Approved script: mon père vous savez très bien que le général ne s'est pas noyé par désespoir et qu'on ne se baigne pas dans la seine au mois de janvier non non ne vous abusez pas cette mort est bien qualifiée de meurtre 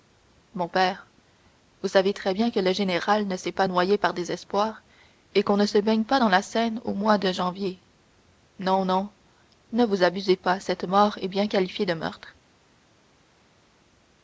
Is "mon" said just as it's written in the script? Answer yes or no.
yes